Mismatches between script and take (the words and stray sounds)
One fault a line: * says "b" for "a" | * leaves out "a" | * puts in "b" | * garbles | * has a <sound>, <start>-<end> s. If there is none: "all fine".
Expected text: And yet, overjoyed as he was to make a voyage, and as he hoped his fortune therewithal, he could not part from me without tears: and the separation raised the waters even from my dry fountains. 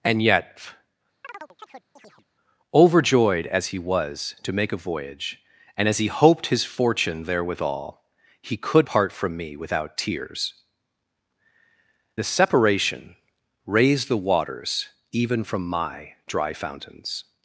* has a chirp, 1.2-2.3 s
* leaves out "not"
* leaves out "and"